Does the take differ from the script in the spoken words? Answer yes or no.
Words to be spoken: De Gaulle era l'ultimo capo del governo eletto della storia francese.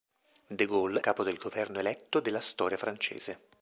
yes